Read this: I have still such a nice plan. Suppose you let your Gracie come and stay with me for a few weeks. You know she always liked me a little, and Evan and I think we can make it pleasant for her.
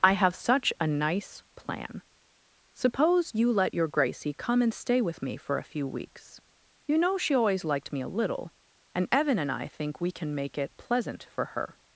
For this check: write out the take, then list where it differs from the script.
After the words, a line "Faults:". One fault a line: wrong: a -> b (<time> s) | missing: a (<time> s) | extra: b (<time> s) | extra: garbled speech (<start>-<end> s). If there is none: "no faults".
I have such a nice plan. Suppose you let your Gracie come and stay with me for a few weeks. You know she always liked me a little, and Evan and I think we can make it pleasant for her.
Faults:
missing: still (0.3 s)